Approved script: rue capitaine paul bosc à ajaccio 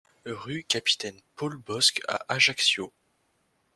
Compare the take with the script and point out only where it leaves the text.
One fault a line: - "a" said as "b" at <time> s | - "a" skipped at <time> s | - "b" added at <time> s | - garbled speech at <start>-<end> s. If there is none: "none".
none